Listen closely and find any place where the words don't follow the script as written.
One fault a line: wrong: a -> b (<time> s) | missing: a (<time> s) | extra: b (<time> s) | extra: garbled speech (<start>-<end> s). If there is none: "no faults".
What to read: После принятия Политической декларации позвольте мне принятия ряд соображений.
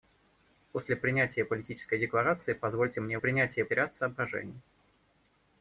no faults